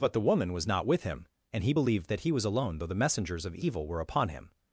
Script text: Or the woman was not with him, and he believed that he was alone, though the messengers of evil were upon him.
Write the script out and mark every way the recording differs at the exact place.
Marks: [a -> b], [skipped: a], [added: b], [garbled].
[Or -> But] the woman was not with him, and he believed that he was alone, though the messengers of evil were upon him.